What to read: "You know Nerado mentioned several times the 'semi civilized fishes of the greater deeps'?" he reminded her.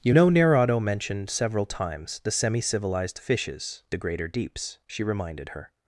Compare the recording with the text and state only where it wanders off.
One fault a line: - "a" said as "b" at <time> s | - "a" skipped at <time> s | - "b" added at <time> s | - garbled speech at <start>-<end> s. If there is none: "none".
- "of" skipped at 3.8 s
- "he" said as "she" at 4.9 s